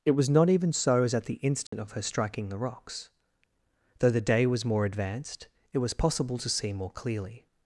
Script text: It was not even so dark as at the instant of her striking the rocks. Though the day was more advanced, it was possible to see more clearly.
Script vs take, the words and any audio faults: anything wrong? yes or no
yes